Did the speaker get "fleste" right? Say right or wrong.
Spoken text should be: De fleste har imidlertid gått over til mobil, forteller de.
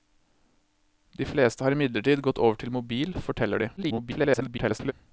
right